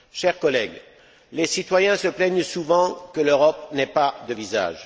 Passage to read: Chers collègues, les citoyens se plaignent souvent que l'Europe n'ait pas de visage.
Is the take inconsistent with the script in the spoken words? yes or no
no